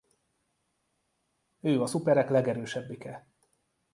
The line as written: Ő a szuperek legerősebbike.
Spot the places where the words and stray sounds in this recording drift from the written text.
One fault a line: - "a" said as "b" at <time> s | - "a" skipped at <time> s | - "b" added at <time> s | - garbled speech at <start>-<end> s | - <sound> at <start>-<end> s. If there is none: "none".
none